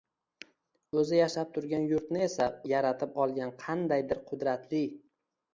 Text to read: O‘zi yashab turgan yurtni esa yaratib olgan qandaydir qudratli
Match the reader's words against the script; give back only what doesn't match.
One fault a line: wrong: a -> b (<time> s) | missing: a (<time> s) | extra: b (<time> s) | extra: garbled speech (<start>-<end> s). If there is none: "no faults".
no faults